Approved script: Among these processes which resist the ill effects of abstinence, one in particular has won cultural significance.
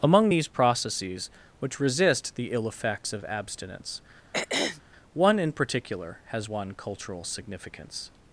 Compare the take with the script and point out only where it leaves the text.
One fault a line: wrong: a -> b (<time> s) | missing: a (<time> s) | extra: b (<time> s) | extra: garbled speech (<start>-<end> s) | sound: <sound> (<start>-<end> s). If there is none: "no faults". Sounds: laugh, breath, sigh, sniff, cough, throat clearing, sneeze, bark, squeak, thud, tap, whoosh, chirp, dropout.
sound: throat clearing (4.3-4.8 s)